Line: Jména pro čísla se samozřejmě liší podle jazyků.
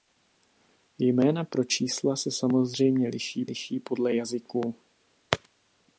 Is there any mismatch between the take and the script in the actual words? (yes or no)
yes